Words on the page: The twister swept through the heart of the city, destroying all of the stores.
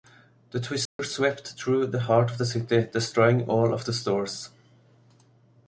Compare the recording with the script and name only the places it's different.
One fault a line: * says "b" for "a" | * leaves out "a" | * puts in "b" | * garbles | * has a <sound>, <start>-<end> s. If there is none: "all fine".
* has a dropout, 0.9-1.0 s